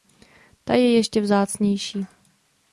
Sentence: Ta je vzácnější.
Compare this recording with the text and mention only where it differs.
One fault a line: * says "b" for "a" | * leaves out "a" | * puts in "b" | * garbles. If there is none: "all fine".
* puts in "ještě"